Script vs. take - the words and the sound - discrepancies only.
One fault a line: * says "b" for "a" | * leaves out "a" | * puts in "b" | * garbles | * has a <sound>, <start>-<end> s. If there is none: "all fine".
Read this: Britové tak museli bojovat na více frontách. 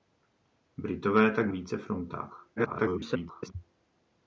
* leaves out "museli bojovat na"
* garbles